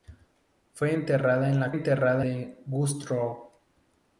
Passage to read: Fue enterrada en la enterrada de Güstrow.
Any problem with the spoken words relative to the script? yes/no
no